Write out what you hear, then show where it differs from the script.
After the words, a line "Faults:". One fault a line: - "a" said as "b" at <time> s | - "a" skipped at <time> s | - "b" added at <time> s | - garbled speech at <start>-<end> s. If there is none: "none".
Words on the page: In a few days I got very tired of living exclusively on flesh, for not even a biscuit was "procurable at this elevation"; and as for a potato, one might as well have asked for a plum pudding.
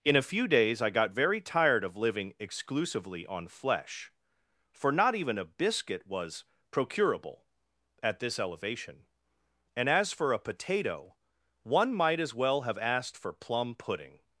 In a few days I got very tired of living exclusively on flesh, for not even a biscuit was "procurable at this elevation"; and as for a potato, one might as well have asked for plum pudding.
Faults:
- "a" skipped at 13.3 s